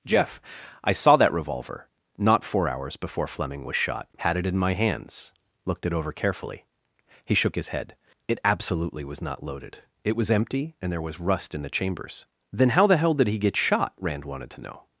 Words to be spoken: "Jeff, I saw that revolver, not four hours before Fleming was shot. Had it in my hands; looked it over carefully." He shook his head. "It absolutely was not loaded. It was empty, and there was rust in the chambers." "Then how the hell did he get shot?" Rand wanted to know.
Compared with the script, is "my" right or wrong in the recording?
right